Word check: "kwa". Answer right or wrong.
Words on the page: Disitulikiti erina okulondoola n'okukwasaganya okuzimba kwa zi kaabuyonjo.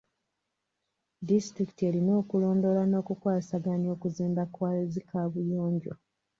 right